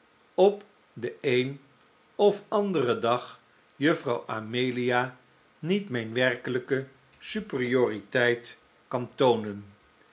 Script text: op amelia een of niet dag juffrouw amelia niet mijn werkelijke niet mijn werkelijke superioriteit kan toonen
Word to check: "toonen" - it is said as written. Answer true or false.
true